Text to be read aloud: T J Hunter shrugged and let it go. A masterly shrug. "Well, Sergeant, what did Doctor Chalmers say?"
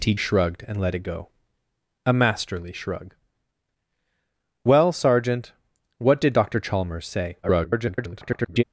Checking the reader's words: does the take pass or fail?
fail